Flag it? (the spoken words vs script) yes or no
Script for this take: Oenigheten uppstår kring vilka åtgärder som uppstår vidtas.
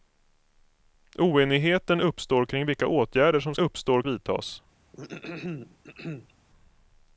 no